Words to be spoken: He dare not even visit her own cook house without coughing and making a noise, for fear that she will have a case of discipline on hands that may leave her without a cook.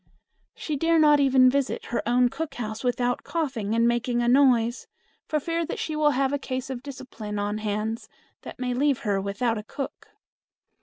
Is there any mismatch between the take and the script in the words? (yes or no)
yes